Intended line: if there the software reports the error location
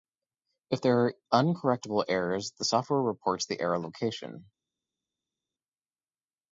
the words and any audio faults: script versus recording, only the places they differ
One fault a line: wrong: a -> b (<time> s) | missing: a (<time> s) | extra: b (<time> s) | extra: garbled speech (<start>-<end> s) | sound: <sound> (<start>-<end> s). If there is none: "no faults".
extra: are uncorrectable errors (1.0 s)